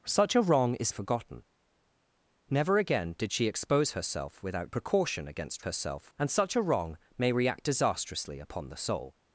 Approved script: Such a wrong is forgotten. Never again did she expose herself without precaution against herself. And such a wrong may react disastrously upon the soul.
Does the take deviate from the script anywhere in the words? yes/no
no